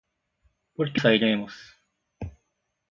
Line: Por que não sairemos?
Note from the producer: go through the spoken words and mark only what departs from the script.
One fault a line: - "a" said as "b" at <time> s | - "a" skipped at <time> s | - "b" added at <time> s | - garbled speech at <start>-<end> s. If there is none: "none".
- "não" skipped at 1.0 s